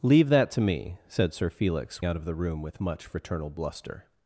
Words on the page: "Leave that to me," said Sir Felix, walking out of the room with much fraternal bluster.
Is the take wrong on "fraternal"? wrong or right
right